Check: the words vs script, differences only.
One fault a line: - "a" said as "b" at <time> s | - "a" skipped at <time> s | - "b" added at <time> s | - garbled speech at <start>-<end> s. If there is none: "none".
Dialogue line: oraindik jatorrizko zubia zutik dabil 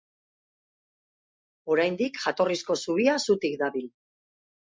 none